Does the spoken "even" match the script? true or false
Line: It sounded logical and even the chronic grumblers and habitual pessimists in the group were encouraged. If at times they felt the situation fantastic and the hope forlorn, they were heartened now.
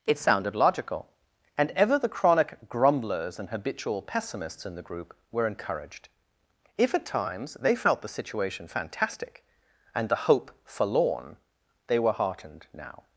false